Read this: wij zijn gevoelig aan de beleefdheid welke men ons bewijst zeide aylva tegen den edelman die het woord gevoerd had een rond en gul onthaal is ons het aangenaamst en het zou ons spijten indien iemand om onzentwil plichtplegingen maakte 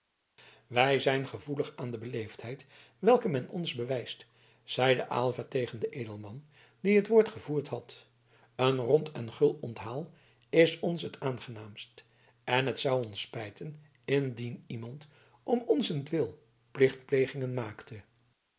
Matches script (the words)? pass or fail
pass